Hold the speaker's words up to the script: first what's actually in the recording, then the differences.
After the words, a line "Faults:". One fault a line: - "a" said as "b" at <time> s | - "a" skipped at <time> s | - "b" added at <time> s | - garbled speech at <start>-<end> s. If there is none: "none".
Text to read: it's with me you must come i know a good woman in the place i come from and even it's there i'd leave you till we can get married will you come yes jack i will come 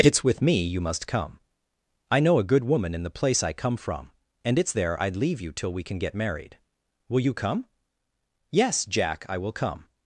it's with me you must come i know a good woman in the place i come from and it's there i'd leave you till we can get married will you come yes jack i will come
Faults:
- "even" skipped at 4.6 s